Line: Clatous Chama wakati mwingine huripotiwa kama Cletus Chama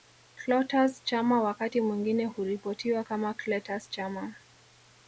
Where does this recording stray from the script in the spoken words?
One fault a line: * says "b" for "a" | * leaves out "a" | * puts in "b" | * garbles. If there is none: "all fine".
all fine